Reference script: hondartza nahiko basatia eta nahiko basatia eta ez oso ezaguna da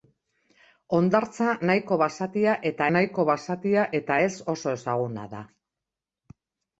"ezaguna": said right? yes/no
yes